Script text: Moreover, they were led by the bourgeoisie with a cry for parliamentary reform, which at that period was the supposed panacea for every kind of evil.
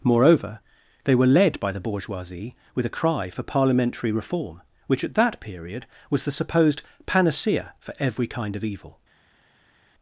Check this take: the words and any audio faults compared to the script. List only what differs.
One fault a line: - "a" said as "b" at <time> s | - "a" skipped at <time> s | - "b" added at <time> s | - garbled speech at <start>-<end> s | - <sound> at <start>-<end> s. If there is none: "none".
none